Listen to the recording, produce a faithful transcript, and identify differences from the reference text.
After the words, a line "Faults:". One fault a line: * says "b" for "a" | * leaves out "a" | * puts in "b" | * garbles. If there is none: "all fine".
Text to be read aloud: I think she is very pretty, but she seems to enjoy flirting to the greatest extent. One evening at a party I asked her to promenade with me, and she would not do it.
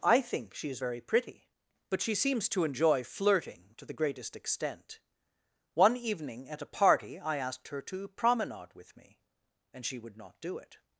I think she is very pretty, but she seems to enjoy flirting to the greatest extent. One evening at a party I asked her to promenade with me, and she would not do it.
Faults:
all fine